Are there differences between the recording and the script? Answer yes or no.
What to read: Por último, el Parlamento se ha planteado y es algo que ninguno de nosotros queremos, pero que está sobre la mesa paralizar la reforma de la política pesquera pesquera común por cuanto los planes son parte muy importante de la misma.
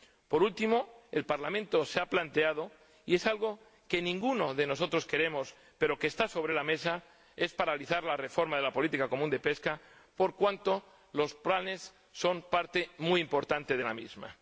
yes